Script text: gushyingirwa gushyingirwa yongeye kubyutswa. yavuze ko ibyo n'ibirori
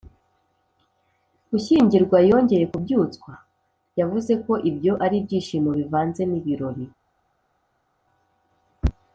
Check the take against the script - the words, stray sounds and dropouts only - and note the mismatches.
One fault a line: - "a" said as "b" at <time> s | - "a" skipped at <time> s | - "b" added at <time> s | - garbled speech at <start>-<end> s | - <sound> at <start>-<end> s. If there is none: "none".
- "gushyingirwa" skipped at 2.2 s
- "ari ibyishimo bivanze" added at 5.0 s